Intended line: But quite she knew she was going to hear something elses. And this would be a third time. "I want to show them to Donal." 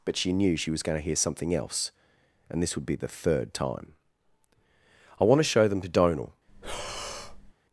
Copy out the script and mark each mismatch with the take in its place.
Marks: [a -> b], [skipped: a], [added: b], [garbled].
But [skipped: quite] she knew she was going to hear something [elses. -> else] And this would be [a -> the] third time. "I want to show them to Donal."